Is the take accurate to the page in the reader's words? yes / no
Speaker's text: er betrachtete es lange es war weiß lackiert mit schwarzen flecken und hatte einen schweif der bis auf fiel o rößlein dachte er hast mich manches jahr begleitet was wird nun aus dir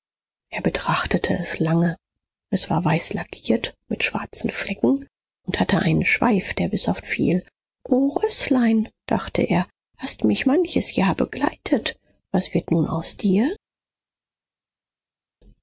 yes